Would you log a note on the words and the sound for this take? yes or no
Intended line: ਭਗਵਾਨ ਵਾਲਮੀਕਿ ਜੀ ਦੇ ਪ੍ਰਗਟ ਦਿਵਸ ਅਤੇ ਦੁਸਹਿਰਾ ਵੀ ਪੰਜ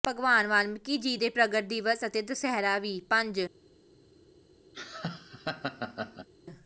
yes